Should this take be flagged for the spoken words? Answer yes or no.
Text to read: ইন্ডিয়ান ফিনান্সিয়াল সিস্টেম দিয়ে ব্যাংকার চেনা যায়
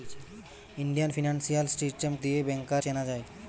no